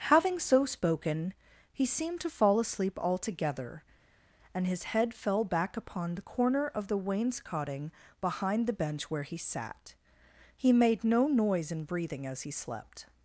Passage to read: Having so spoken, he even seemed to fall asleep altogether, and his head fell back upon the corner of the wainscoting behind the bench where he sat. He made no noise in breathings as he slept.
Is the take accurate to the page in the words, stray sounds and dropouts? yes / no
no